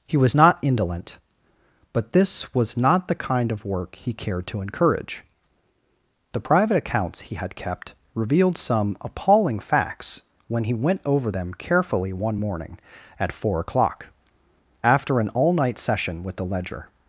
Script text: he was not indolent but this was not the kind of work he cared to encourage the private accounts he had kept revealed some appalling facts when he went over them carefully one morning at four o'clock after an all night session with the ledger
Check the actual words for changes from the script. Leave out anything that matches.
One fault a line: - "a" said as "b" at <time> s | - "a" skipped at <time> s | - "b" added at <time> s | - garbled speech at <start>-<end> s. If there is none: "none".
none